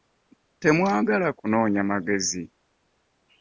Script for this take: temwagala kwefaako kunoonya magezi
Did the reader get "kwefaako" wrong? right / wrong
wrong